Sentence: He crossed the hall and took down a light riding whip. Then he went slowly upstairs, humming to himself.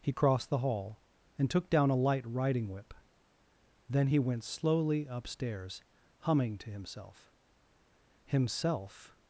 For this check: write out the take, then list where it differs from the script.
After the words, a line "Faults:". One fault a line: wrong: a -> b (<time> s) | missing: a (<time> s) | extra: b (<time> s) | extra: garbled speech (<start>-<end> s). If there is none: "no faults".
He crossed the hall and took down a light riding whip. Then he went slowly upstairs, humming to himself himself.
Faults:
extra: himself (8.3 s)